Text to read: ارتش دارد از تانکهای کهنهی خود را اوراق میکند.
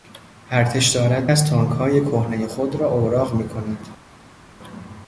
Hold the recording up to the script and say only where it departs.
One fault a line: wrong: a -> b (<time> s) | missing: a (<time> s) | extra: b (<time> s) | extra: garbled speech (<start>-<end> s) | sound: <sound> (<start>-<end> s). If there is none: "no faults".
no faults